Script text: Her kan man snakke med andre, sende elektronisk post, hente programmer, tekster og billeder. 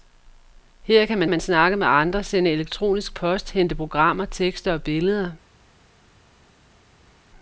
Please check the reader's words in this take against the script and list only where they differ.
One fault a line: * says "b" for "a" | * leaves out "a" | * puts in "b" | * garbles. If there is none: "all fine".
* puts in "man"